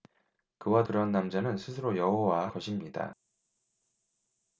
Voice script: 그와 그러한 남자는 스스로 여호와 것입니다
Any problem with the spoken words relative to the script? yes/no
no